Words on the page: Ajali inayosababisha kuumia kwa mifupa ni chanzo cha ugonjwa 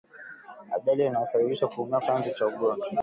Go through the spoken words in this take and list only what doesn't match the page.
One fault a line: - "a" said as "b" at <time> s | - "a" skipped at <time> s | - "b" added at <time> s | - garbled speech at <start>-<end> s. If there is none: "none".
- "kwa mifupa ni" skipped at 2.0 s